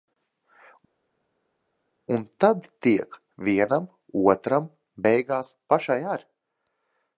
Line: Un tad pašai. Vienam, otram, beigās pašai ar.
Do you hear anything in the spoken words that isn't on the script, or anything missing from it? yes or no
yes